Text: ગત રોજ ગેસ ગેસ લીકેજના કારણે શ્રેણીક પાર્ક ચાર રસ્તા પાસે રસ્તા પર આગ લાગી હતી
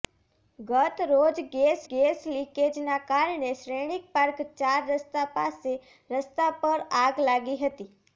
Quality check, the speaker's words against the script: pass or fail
pass